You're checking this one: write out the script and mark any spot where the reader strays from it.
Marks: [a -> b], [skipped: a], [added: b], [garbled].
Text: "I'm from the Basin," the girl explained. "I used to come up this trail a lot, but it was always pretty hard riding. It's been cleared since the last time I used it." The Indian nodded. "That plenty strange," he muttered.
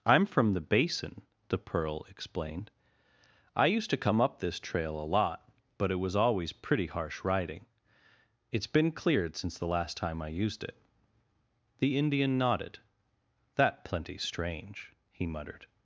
"I'm from the Basin," the [girl -> pearl] explained. "I used to come up this trail a lot, but it was always pretty [hard -> harsh] riding. It's been cleared since the last time I used it." The Indian nodded. "That plenty strange," he muttered.